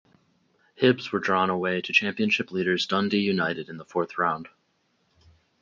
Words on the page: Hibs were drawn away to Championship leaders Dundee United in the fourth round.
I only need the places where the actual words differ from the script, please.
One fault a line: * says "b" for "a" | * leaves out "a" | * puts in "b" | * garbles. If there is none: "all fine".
all fine